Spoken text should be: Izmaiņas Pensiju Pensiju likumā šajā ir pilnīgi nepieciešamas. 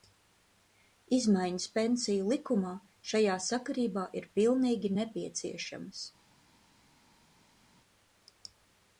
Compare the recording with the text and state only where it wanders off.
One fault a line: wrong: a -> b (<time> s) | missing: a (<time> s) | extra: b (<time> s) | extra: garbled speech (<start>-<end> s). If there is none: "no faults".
missing: Pensiju (2.3 s)
extra: sakarībā (3.5 s)